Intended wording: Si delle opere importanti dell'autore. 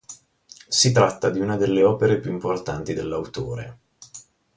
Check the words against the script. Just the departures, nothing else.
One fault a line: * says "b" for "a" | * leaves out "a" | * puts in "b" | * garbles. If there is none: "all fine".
* puts in "tratta di una"
* puts in "più"